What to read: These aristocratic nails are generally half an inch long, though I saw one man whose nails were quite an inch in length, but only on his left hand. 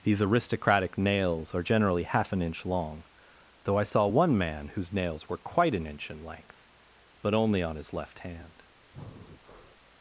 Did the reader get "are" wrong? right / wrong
right